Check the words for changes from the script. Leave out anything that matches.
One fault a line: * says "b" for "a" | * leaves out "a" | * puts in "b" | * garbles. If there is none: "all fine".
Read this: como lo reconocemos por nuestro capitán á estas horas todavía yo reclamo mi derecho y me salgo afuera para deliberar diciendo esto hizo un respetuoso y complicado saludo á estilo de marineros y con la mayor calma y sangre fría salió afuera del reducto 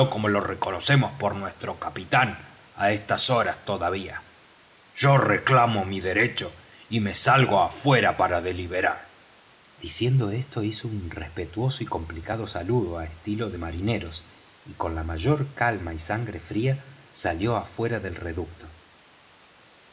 all fine